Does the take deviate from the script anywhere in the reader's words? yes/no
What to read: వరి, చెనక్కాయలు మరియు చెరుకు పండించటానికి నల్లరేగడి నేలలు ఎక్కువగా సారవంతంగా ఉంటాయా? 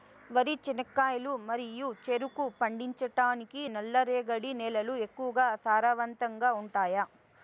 no